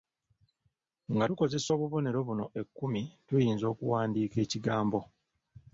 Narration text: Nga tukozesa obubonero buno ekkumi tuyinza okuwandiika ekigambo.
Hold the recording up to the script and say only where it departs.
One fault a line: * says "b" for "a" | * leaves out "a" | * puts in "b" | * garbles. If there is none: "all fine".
all fine